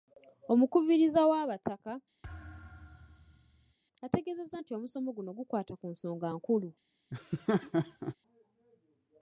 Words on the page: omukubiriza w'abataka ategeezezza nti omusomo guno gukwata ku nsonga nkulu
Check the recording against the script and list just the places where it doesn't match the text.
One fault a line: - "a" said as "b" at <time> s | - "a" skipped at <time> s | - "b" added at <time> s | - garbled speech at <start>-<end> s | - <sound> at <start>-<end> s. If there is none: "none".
- thud at 2.2-3.7 s
- laugh at 7.1-8.2 s